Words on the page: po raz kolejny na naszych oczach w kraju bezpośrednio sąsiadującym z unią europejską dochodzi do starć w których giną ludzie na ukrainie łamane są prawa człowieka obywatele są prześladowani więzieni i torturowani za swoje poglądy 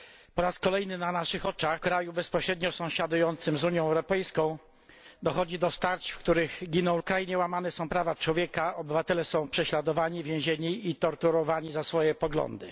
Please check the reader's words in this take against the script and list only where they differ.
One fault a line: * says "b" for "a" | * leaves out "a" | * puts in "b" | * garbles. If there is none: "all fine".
* leaves out "w"
* leaves out "ludzie na"